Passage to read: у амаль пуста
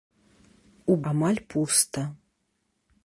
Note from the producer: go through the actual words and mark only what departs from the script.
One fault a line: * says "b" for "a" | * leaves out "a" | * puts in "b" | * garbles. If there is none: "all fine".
all fine